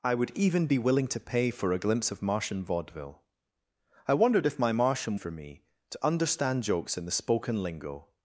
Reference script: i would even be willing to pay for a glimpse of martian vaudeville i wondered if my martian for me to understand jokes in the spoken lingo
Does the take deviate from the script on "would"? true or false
false